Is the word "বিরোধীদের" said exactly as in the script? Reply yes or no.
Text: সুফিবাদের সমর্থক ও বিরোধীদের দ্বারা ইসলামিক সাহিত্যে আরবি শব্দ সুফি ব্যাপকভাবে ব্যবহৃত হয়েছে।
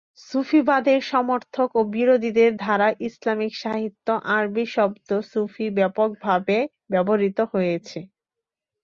yes